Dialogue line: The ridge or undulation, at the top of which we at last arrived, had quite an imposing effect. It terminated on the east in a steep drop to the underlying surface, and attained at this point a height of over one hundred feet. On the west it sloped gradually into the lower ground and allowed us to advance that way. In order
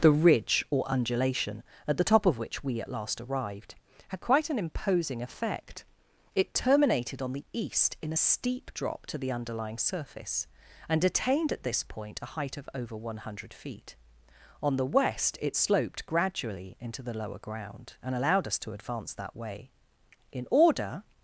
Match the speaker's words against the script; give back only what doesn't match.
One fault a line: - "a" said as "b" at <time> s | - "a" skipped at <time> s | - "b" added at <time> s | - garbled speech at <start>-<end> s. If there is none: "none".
none